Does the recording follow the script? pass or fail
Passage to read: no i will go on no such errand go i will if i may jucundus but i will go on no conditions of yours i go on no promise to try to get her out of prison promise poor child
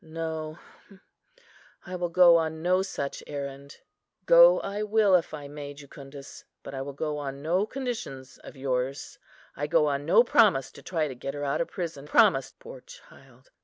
pass